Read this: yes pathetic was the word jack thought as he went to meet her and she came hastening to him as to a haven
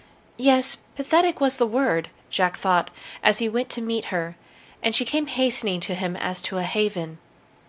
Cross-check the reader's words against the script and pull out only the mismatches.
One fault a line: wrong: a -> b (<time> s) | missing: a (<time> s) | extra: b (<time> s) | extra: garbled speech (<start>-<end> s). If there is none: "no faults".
no faults